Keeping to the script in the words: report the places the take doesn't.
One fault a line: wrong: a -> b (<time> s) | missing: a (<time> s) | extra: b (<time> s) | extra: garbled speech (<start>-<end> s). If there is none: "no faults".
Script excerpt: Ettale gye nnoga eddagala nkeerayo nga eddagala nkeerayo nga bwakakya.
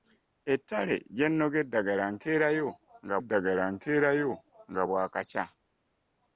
no faults